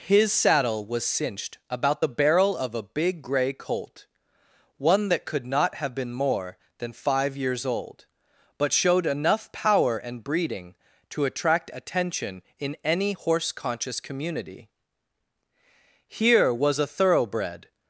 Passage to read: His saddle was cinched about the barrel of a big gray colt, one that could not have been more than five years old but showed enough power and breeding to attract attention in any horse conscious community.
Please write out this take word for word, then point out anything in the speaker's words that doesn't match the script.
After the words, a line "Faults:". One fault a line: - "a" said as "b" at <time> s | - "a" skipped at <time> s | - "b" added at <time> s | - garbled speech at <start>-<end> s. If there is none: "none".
His saddle was cinched about the barrel of a big gray colt, one that could not have been more than five years old but showed enough power and breeding to attract attention in any horse conscious community. Here was a thoroughbred
Faults:
- "Here was a thoroughbred" added at 16.1 s